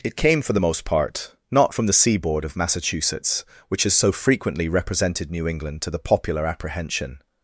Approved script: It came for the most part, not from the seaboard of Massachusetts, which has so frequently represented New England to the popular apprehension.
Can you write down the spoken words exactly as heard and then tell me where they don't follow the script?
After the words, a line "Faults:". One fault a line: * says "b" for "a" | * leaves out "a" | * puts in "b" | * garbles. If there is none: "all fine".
It came for the most part, not from the seaboard of Massachusetts, which has so frequently represented New England to the popular apprehension.
Faults:
all fine